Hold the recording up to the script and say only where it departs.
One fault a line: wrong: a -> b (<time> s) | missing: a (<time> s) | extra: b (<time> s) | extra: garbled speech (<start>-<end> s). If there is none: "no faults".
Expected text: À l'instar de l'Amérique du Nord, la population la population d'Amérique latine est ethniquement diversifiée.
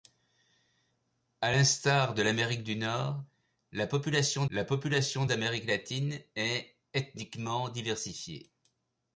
no faults